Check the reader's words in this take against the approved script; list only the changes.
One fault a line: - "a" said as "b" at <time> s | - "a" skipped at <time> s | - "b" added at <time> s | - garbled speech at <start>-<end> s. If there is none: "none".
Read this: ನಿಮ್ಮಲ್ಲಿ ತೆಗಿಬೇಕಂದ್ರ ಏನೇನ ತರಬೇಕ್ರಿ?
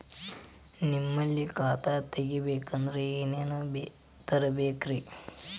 - "ಖಾತಾ" added at 1.5 s